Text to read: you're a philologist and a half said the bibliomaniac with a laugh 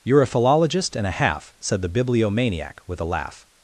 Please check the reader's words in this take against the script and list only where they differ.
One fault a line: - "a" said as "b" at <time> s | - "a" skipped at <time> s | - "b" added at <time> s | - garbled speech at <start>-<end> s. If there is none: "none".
none